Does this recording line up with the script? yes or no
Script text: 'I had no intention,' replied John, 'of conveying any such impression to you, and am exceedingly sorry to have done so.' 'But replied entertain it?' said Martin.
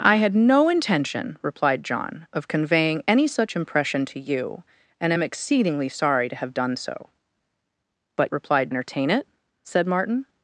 yes